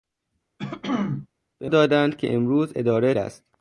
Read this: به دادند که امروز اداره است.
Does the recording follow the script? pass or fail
pass